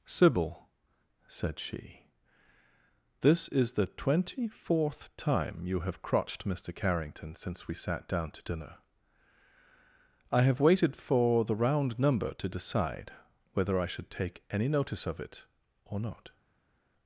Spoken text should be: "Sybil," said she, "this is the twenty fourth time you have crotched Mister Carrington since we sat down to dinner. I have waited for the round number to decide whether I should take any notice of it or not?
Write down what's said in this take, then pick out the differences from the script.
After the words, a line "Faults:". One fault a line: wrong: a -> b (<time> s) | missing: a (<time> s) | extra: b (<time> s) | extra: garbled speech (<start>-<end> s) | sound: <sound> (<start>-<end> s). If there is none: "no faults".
"Sybil," said she, "this is the twenty fourth time you have crotched Mister Carrington since we sat down to dinner. I have waited for the round number to decide whether I should take any notice of it or not?
Faults:
no faults